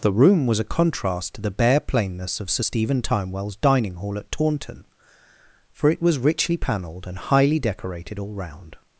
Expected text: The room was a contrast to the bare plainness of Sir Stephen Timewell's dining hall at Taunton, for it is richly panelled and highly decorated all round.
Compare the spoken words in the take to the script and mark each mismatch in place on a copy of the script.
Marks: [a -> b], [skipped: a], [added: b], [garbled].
The room was a contrast to the bare plainness of Sir Stephen Timewell's dining hall at Taunton, for it [is -> was] richly panelled and highly decorated all round.